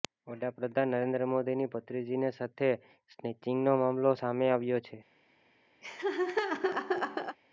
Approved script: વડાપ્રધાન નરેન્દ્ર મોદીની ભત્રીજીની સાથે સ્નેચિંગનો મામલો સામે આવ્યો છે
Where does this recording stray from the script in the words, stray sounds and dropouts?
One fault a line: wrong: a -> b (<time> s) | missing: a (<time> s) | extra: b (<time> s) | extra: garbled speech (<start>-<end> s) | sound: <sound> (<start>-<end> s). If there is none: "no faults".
sound: laugh (5.8-7.4 s)